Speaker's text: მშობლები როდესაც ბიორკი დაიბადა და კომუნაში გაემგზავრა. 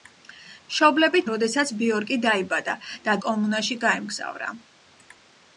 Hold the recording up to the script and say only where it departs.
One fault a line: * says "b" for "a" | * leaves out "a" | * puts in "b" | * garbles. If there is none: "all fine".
all fine